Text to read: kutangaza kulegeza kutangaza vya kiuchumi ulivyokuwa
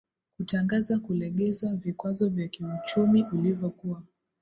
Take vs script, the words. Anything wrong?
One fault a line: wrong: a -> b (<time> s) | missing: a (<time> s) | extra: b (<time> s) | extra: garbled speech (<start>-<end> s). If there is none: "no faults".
wrong: kutangaza -> vikwazo (1.8 s)